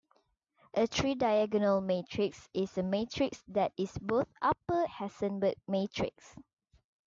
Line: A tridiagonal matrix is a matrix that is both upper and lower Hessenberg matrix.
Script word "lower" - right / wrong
wrong